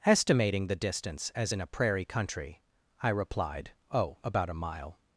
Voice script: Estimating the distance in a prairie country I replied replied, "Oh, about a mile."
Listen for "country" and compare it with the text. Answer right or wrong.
right